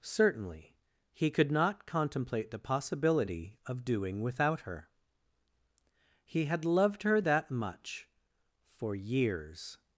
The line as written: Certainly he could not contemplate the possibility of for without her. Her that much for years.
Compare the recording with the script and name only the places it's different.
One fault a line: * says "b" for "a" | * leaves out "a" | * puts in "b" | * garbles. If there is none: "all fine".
* says "doing" for "for"
* puts in "He had loved"